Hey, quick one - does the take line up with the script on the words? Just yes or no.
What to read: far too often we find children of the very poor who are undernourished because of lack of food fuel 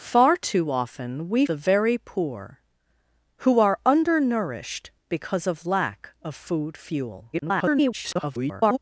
no